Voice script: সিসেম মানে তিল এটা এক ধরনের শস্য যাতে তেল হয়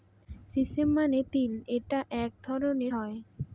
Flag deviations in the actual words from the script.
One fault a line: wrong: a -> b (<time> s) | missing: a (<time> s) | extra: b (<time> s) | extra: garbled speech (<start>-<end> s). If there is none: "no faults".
missing: শস্য যাতে তেল (2.9 s)